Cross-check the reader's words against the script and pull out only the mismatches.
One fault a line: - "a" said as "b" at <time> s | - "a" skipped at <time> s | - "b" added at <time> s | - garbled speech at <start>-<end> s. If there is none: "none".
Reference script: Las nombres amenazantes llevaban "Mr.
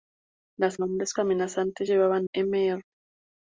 none